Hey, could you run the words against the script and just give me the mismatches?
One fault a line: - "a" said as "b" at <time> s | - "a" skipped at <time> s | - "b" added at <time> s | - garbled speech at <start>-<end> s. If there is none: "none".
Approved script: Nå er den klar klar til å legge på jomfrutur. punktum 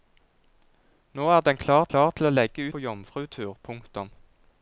none